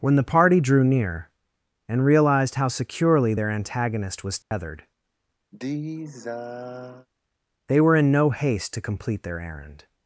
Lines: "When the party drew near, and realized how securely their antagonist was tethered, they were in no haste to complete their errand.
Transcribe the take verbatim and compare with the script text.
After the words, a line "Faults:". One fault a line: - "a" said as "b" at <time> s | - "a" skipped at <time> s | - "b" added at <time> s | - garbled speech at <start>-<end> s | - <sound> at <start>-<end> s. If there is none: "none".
"When the party drew near, and realized how securely their antagonist was tethered, they were in no haste to complete their errand.
Faults:
- dropout at 4.4-4.5 s
- sigh at 5.5-7.1 s